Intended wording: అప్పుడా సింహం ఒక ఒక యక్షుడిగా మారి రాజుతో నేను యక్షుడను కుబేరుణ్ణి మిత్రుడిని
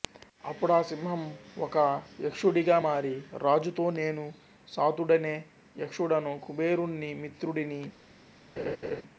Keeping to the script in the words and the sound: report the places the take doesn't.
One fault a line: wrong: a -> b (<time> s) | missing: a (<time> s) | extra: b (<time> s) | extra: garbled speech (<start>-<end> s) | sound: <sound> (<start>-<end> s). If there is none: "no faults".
missing: ఒక (1.8 s)
extra: సాతుడనే (4.7 s)
sound: laugh (8.6-9.0 s)